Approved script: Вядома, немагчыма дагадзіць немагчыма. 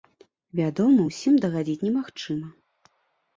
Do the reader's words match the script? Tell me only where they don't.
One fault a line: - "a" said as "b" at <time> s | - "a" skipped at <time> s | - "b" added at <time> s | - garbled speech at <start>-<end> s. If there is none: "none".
- "немагчыма" said as "усім" at 1.1 s